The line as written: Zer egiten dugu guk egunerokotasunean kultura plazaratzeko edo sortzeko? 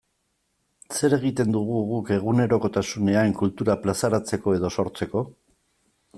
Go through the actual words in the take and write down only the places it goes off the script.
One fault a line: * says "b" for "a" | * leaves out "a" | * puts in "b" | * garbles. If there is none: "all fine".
all fine